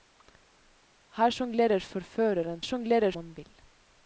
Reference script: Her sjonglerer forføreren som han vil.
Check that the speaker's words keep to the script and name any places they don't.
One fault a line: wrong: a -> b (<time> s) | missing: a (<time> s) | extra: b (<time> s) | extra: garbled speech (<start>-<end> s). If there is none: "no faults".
wrong: som -> sjonglerer (2.6 s)